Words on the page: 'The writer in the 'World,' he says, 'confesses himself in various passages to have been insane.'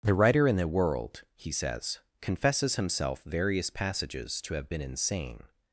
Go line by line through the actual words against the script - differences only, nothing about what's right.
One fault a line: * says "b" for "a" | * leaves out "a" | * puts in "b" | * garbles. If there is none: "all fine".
* leaves out "in"